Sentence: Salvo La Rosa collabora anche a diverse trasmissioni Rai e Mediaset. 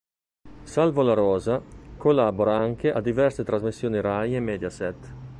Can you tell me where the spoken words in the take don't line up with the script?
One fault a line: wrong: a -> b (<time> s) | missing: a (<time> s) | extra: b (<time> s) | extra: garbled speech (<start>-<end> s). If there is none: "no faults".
no faults